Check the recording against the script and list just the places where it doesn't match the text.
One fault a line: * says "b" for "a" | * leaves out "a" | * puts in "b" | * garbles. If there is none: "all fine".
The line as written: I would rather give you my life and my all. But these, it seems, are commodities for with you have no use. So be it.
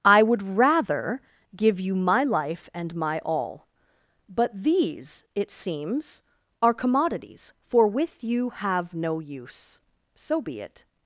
all fine